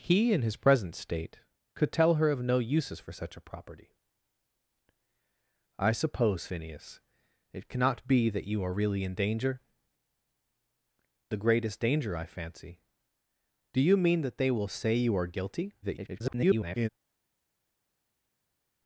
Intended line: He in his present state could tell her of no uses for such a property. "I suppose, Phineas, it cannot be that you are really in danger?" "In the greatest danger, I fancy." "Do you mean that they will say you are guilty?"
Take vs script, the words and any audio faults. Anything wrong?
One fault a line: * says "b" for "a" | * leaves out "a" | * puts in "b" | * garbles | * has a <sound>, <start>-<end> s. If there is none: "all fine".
* leaves out "In"
* garbles